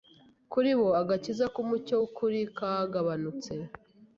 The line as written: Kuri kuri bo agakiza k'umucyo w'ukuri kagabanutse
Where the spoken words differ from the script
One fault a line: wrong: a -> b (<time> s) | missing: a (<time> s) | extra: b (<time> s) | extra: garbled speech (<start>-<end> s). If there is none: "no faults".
missing: kuri (0.7 s)